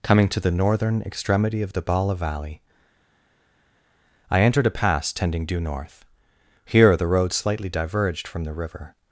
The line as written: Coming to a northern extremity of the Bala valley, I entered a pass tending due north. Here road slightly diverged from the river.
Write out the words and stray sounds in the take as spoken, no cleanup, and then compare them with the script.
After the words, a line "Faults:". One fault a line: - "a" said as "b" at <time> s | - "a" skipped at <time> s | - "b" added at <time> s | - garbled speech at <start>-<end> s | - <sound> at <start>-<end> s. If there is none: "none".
Coming to the northern extremity of the Bala valley, I entered a pass tending due north. Here the road slightly diverged from the river.
Faults:
- "a" said as "the" at 0.4 s
- "the" added at 7.0 s